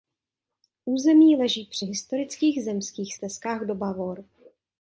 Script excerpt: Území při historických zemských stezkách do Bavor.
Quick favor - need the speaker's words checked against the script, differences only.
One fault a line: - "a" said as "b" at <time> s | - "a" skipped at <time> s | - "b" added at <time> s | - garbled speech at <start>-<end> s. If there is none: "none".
- "leží" added at 1.4 s